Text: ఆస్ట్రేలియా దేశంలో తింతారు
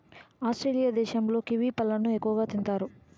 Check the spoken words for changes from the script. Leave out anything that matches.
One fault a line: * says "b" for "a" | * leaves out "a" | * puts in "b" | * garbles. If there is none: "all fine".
* puts in "కివి పళ్ళను ఎక్కువగా"